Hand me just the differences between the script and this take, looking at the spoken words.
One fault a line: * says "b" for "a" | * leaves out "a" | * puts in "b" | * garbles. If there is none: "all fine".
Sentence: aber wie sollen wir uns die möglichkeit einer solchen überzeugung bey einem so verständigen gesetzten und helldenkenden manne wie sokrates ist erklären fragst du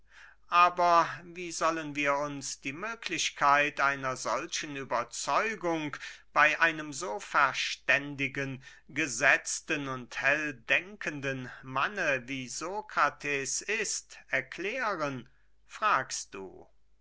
all fine